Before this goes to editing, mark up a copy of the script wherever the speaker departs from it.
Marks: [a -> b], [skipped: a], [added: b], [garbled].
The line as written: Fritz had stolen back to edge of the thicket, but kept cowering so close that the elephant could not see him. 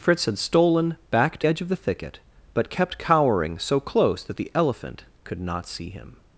Fritz had stolen back to edge of the thicket, but kept cowering so close that the elephant could not see him.